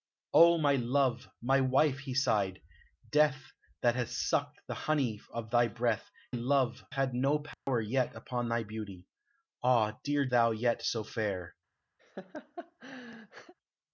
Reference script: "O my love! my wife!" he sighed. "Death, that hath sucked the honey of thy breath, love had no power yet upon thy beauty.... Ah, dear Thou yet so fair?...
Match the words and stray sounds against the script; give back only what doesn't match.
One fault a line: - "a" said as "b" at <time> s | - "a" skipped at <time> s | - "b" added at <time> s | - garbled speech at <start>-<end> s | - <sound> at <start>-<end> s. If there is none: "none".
- dropout at 7.5-7.7 s
- laugh at 12.0-13.5 s